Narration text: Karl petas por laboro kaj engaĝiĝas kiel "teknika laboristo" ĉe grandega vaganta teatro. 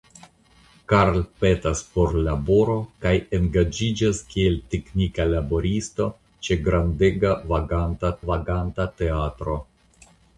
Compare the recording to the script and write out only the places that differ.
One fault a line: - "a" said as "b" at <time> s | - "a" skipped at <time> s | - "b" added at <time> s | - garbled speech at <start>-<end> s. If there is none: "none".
- "vaganta" added at 8.3 s